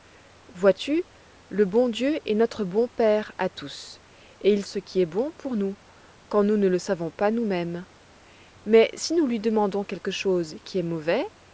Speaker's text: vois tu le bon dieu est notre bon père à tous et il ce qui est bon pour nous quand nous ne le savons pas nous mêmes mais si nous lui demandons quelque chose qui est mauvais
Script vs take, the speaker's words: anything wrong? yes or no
no